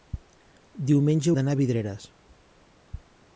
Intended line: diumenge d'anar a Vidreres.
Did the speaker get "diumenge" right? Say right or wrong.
right